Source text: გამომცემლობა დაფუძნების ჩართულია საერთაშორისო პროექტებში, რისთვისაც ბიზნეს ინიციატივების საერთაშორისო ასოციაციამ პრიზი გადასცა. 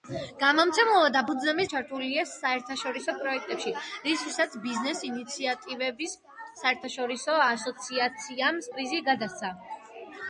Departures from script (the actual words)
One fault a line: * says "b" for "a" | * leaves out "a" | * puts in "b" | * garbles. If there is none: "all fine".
all fine